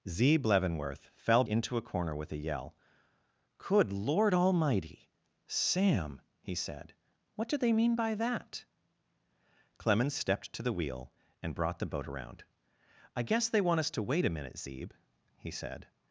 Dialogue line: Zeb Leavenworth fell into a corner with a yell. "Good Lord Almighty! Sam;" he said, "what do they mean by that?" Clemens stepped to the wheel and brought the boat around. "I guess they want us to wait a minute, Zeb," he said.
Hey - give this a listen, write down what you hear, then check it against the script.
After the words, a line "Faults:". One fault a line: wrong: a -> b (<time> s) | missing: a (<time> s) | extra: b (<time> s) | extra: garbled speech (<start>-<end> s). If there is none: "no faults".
Zeb Leavenworth fell into a corner with a yell. "Good Lord Almighty! Sam;" he said, "what do they mean by that?" Clemens stepped to the wheel and brought the boat around. "I guess they want us to wait a minute, Zeb," he said.
Faults:
no faults